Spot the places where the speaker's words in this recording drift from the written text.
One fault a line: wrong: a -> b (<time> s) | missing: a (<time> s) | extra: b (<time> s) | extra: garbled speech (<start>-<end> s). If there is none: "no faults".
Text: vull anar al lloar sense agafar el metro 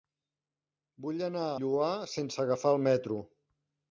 missing: al (1.4 s)